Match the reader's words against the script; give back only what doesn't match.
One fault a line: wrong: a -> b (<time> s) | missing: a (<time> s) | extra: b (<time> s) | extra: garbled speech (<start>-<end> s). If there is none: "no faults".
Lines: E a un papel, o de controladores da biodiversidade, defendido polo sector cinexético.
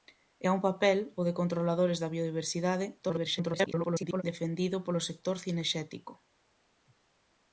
extra: garbled speech (3.0-4.2 s)